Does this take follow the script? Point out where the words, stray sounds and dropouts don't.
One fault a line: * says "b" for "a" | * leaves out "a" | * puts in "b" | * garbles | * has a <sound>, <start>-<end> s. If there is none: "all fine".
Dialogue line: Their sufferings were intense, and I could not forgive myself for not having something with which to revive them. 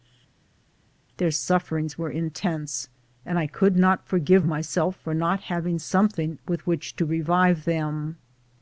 all fine